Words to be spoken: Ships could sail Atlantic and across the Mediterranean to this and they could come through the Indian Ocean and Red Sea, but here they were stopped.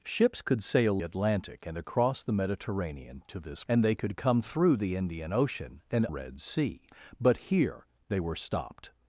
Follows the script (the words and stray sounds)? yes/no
yes